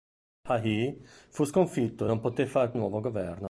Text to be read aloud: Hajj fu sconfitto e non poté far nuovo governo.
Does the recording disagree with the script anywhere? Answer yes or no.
no